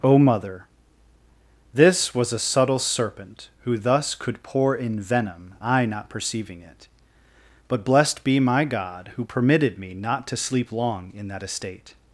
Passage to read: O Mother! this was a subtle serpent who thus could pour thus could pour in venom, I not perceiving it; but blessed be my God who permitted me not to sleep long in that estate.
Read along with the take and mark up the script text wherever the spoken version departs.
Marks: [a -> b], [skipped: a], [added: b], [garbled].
O Mother! this was a subtle serpent who thus could pour [skipped: thus could pour] in venom, I not perceiving it; but blessed be my God who permitted me not to sleep long in that estate.